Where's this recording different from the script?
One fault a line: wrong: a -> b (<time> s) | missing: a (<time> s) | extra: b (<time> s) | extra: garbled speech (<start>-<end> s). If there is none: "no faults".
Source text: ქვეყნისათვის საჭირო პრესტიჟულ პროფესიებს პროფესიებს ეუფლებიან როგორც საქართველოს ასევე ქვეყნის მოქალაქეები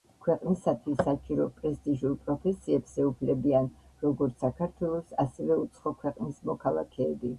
missing: პროფესიებს (3.0 s)
extra: უცხო (5.6 s)